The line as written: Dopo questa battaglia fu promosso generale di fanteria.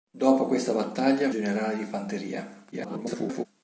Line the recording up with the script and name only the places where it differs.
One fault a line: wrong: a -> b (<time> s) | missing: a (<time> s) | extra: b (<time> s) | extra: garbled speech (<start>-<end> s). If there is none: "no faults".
missing: fu promosso (1.3 s)
extra: garbled speech (2.7-3.5 s)